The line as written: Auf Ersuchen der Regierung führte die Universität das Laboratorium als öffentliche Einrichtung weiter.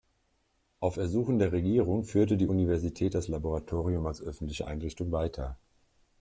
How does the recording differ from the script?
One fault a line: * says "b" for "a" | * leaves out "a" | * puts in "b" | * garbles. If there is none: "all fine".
all fine